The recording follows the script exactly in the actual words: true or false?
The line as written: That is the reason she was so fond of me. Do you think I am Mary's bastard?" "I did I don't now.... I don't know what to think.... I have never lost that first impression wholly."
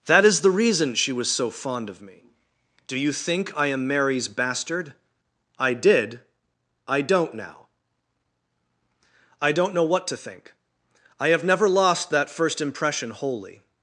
true